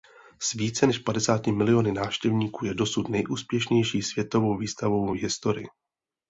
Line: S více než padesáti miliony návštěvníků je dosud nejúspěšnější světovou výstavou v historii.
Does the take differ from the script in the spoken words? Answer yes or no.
no